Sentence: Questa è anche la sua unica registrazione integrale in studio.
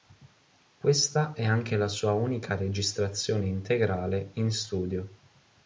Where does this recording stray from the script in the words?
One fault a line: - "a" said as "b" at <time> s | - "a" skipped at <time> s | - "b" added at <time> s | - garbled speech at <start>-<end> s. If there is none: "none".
none